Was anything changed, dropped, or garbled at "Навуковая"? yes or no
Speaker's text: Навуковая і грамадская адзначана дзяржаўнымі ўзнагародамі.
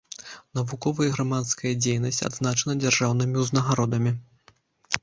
no